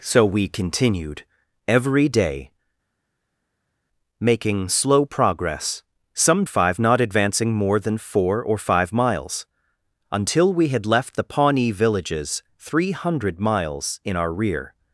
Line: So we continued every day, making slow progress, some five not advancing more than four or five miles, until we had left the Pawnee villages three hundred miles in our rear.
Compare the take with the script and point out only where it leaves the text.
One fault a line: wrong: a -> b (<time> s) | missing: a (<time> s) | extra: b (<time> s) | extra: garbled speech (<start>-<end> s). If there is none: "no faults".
no faults